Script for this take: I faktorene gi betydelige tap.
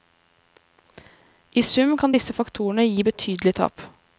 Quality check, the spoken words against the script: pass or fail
fail